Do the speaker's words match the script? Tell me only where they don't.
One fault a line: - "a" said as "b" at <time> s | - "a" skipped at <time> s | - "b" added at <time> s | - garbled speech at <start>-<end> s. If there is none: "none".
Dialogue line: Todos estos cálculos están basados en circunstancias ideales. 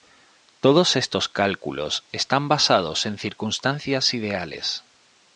none